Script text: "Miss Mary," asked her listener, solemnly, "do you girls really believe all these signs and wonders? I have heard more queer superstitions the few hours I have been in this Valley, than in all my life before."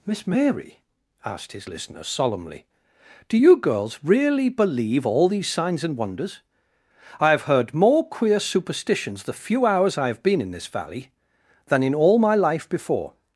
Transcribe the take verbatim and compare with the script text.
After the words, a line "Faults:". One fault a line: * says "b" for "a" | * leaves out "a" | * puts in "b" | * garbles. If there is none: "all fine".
"Miss Mary," asked his listener, solemnly, "do you girls really believe all these signs and wonders? I have heard more queer superstitions the few hours I have been in this Valley, than in all my life before."
Faults:
* says "his" for "her"